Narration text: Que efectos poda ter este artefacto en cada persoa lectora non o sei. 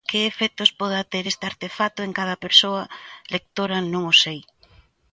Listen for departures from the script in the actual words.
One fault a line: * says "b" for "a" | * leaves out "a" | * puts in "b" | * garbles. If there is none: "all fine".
all fine